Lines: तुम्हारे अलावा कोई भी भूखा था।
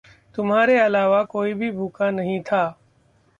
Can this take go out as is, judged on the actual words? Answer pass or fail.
fail